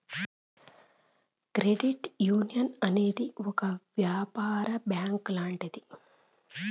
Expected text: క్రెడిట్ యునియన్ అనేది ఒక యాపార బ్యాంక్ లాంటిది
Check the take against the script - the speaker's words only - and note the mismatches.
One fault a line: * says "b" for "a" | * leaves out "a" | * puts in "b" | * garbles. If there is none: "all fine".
all fine